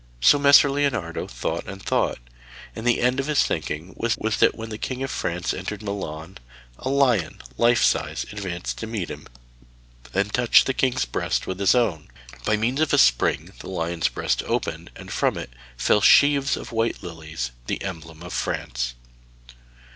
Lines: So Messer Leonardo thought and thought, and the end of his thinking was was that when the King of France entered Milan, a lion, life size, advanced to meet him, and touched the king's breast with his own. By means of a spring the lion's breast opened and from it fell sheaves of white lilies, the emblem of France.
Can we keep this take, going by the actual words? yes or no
yes